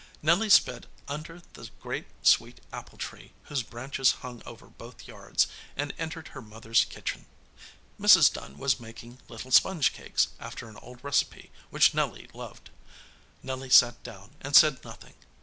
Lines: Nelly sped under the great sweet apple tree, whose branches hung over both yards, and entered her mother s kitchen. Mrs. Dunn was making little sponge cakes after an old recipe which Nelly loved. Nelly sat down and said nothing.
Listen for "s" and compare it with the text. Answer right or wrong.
right